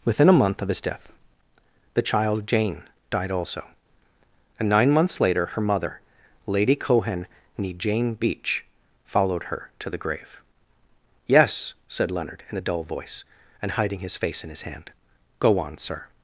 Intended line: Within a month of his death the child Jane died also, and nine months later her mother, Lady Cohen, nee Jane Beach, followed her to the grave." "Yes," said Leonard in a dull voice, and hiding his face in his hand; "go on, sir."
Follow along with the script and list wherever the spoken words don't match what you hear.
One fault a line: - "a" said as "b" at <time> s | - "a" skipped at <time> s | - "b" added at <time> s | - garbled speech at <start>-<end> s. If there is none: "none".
none